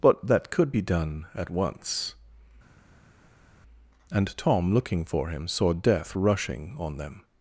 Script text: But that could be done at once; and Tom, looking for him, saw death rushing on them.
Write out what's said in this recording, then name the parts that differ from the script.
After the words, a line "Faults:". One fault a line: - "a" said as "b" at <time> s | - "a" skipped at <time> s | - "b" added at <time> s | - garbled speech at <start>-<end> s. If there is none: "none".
But that could be done at once; and Tom, looking for him, saw death rushing on them.
Faults:
none